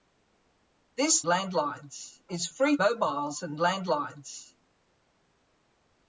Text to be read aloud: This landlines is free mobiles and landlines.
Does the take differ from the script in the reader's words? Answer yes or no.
no